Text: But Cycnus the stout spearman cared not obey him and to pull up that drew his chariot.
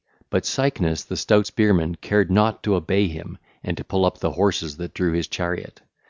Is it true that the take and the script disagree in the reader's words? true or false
true